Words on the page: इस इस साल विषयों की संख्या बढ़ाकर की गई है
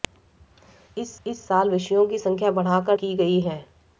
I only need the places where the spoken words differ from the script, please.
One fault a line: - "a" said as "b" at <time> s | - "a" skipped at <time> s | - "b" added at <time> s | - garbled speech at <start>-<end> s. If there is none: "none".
none